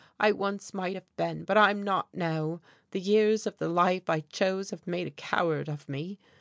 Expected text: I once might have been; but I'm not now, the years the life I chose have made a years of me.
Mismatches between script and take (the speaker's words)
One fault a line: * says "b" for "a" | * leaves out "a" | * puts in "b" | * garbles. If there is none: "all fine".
* puts in "of"
* says "coward" for "years"